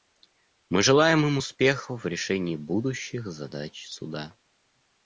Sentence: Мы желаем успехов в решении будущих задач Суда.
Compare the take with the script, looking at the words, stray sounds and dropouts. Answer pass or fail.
fail